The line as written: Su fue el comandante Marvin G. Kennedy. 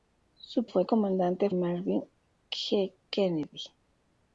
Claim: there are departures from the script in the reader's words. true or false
false